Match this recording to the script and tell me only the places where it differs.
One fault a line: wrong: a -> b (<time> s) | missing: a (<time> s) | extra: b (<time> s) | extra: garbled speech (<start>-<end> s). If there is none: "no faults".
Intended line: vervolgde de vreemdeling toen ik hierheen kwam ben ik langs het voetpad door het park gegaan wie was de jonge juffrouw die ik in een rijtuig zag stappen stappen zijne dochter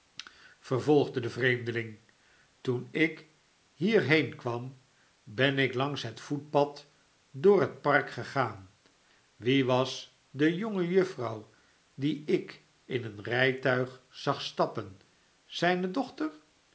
missing: stappen (15.0 s)